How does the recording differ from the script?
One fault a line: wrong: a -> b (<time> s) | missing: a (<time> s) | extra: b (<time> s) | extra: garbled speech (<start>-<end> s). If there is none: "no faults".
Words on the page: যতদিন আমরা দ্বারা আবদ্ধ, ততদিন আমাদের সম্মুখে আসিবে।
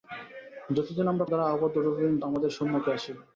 no faults